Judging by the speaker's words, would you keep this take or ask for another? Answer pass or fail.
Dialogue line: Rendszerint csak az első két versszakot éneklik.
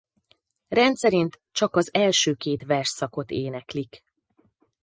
pass